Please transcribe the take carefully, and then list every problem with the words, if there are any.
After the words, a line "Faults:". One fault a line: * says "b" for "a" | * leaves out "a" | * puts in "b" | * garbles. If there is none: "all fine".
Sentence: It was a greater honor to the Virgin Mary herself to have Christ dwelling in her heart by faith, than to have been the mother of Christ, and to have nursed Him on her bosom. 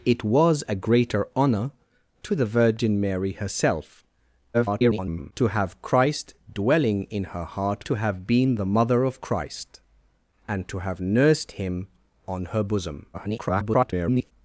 It was a greater honor to the Virgin Mary herself [garbled] to have Christ dwelling in her heart to have been the mother of Christ, and to have nursed Him on her bosom. [garbled]
Faults:
* garbles
* leaves out "by faith than"
* garbles